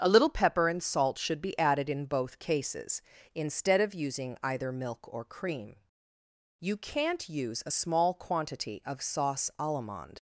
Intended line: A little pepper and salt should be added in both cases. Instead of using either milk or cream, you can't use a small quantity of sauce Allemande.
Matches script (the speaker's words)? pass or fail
pass